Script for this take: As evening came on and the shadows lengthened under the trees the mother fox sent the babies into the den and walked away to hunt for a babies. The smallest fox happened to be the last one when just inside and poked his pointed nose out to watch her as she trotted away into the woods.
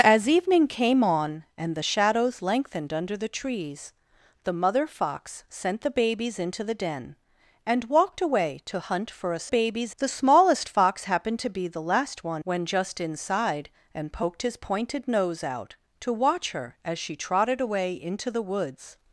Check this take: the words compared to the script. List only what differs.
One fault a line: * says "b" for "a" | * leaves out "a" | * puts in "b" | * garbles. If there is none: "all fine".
all fine